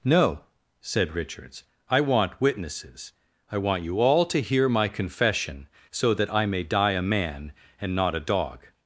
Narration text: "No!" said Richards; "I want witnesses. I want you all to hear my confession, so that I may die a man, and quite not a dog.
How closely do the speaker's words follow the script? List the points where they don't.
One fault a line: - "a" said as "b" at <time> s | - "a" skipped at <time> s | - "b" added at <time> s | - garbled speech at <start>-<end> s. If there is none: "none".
- "quite" skipped at 7.9 s